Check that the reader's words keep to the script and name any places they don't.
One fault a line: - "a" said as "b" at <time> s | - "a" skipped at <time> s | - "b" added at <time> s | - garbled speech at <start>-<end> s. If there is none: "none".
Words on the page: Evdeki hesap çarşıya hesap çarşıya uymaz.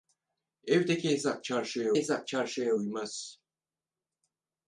none